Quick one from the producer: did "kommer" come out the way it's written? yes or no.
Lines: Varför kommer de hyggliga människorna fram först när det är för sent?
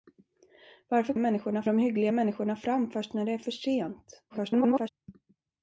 no